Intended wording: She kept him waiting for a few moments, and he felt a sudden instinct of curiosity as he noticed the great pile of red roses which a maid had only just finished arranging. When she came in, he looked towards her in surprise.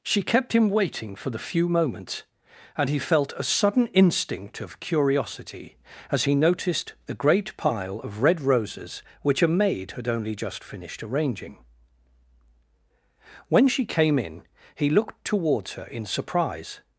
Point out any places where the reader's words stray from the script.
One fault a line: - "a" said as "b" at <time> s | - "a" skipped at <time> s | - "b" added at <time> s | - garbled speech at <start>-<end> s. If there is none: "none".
- "a" said as "the" at 1.3 s